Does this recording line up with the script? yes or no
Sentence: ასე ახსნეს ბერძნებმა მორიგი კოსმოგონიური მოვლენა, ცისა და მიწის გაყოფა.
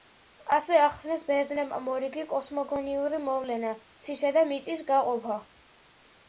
yes